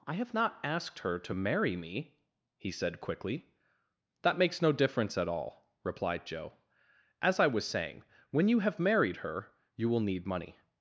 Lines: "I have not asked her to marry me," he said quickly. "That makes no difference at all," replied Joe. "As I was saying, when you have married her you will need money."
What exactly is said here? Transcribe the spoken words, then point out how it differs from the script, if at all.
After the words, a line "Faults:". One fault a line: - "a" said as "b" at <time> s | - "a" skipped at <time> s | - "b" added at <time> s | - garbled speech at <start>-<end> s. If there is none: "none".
"I have not asked her to marry me," he said quickly. "That makes no difference at all," replied Joe. "As I was saying, when you have married her you will need money."
Faults:
none